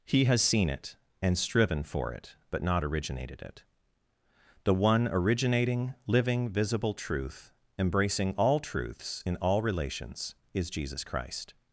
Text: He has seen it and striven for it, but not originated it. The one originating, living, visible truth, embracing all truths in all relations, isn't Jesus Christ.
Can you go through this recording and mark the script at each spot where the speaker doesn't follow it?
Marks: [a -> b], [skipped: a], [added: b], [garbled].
He has seen it and striven for it, but not originated it. The one originating, living, visible truth, embracing all truths in all relations, [isn't -> is] Jesus Christ.